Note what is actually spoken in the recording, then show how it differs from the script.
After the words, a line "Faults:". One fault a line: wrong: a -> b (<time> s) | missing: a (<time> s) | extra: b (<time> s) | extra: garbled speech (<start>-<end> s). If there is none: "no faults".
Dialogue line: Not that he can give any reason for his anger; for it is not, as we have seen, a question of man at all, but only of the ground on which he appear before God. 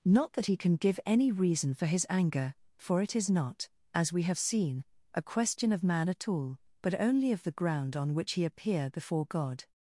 Not that he can give any reason for his anger; for it is not, as we have seen, a question of man at all, but only of the ground on which he appear before God.
Faults:
no faults